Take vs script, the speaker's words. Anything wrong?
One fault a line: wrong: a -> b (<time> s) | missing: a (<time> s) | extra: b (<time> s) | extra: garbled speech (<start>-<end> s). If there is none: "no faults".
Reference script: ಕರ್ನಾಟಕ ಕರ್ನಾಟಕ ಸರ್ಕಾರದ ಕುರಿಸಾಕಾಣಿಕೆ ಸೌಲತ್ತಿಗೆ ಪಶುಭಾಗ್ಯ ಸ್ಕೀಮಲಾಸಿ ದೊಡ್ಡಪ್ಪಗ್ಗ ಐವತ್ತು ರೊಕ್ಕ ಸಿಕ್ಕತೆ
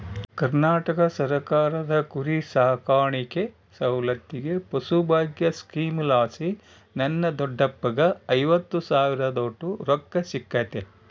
missing: ಕರ್ನಾಟಕ (1.0 s)
extra: ನನ್ನ (7.0 s)
extra: ಸಾವಿರದೋಟು (8.9 s)